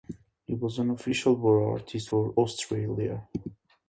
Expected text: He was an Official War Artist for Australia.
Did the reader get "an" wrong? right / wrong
right